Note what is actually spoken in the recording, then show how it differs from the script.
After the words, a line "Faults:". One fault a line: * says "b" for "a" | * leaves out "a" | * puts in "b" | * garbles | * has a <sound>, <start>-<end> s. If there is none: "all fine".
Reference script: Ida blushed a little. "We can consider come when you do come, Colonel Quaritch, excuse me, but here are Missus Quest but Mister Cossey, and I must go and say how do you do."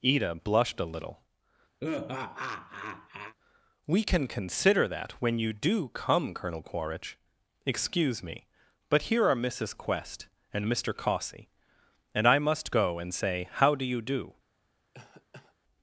Ida blushed a little. "We can consider that when you do come, Colonel Quaritch, excuse me, but here are Missus Quest and Mister Cossey, and I must go and say how do you do."
Faults:
* has a laugh, 1.8-3.3 s
* says "that" for "come"
* says "and" for "but"
* has a cough, 14.9-15.6 s